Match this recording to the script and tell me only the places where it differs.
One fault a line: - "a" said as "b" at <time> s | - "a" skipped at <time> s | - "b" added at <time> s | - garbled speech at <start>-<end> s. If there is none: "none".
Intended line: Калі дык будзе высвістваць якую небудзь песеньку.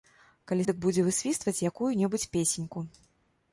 none